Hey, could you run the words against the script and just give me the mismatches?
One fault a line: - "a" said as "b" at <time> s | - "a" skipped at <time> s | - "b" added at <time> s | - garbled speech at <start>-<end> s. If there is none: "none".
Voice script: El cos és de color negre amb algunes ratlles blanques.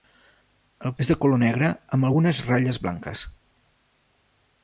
- "cos" skipped at 0.9 s